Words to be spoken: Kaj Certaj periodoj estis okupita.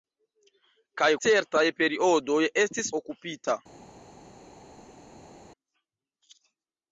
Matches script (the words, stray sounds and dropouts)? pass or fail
pass